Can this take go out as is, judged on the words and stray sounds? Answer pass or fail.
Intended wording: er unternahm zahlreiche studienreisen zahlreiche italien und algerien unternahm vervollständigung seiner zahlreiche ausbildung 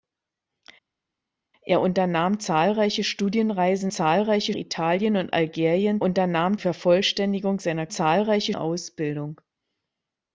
pass